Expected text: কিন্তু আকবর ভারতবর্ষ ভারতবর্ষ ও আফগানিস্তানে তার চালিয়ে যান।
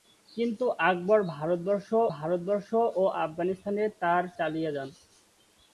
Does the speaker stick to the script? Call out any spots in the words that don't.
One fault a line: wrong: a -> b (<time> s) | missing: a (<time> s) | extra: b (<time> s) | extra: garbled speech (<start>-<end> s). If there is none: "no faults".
no faults